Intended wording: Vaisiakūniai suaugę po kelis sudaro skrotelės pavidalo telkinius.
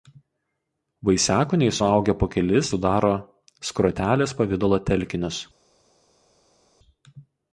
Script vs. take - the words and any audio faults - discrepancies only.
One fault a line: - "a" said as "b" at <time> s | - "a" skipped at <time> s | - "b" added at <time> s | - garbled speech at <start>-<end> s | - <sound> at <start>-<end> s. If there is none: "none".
none